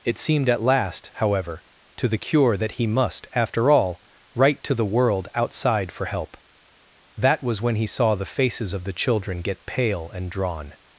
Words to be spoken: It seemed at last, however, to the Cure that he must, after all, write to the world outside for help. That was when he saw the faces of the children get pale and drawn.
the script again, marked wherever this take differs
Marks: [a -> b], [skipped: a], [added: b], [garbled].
It seemed at last, however, to the Cure that he must, after all, write to the world outside for help. That was when he saw the faces of the children get pale and drawn.